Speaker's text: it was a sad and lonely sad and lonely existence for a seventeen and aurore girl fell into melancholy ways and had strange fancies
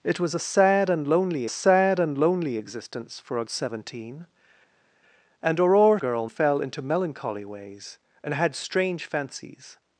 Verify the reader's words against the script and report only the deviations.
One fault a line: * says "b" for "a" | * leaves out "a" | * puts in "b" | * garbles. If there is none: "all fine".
all fine